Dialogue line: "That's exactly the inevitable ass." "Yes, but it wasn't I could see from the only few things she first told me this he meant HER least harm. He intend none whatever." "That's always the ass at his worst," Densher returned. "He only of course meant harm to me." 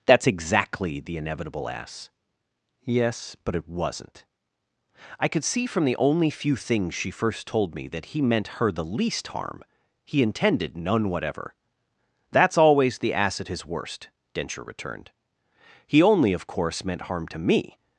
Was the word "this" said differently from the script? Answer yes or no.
yes